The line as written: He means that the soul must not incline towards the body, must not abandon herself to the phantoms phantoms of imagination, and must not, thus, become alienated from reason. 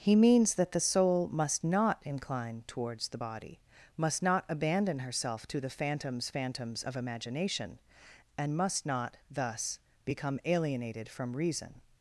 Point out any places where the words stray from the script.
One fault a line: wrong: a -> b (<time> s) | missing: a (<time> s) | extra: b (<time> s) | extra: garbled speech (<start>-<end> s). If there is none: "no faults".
no faults